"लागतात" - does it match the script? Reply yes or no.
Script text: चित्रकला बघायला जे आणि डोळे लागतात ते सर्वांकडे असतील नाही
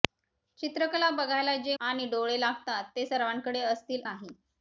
yes